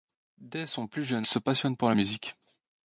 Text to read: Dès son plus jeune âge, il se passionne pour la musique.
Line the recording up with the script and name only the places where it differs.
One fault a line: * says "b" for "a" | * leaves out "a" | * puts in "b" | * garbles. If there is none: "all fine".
* leaves out "âge il"